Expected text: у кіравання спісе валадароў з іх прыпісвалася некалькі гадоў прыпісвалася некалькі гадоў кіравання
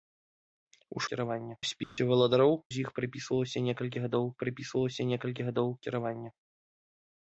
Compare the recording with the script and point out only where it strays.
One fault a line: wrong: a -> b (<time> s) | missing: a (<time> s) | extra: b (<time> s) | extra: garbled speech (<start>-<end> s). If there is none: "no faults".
no faults